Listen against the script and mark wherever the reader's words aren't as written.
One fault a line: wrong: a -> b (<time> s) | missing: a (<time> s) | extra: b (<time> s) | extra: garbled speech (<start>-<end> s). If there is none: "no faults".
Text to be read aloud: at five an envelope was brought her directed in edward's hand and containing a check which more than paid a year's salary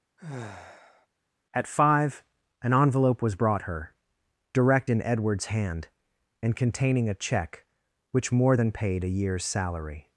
wrong: directed -> direct (4.5 s)